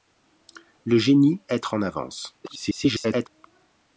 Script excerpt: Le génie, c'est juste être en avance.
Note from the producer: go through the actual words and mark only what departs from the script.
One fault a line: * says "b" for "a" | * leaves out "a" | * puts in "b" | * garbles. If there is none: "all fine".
* leaves out "c'est juste"
* garbles